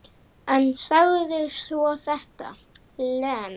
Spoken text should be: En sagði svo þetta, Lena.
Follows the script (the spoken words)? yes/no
yes